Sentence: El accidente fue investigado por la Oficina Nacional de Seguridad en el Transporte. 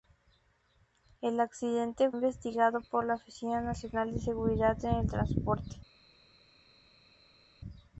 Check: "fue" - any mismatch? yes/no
yes